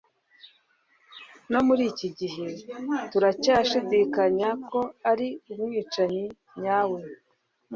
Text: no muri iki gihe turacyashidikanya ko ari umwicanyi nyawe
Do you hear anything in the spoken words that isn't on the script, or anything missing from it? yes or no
no